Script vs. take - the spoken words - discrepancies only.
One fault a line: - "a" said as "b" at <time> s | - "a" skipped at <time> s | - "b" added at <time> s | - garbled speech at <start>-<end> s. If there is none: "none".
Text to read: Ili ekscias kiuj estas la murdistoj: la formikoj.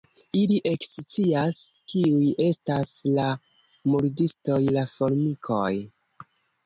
none